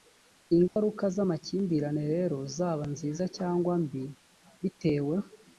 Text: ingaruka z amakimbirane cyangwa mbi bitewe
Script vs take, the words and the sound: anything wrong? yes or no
yes